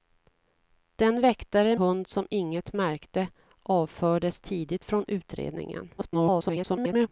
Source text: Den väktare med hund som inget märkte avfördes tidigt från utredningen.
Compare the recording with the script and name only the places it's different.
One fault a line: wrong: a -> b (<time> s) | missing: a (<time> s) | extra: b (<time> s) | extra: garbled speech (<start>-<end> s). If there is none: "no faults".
missing: med (1.8 s)
extra: garbled speech (6.0-7.1 s)